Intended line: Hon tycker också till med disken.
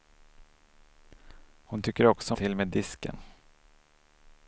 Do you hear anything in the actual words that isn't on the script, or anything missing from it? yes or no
no